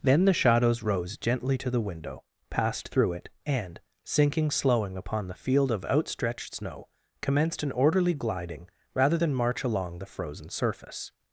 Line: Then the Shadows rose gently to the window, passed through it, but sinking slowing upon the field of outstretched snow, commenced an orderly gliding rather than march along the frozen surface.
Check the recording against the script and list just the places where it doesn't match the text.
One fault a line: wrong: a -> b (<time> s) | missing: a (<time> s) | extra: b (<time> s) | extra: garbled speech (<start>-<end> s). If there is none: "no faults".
wrong: but -> and (3.5 s)